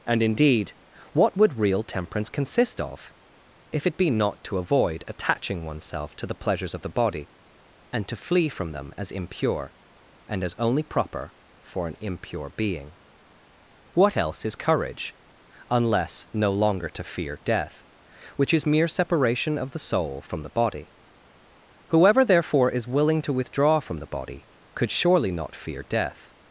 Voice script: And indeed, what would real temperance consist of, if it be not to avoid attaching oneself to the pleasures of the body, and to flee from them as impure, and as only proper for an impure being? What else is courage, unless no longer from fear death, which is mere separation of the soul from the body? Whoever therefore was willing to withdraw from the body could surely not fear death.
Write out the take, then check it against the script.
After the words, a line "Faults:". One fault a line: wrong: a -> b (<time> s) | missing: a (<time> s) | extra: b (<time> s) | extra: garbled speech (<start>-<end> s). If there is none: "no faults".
And indeed, what would real temperance consist of, if it be not to avoid attaching oneself to the pleasures of the body, and to flee from them as impure, and as only proper for an impure being? What else is courage, unless no longer to fear death, which is mere separation of the soul from the body? Whoever therefore is willing to withdraw from the body could surely not fear death.
Faults:
wrong: from -> to (16.9 s)
wrong: was -> is (22.7 s)